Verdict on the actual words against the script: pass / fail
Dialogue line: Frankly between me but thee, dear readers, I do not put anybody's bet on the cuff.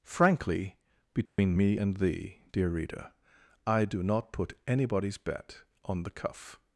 fail